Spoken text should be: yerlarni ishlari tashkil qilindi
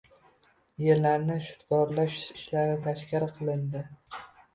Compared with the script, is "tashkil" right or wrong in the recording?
right